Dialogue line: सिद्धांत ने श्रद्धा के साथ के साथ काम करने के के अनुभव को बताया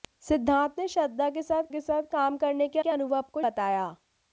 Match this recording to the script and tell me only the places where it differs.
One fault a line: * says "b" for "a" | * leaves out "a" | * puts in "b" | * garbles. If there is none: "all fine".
all fine